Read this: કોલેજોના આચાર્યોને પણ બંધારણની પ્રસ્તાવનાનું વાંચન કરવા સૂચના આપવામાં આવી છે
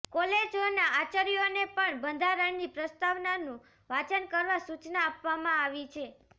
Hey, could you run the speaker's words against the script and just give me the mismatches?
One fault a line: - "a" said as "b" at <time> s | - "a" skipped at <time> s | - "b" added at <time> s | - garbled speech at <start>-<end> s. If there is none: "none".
none